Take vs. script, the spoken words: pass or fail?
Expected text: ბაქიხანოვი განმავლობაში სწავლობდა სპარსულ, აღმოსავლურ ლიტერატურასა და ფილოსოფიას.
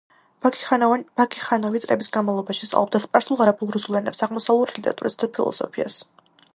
fail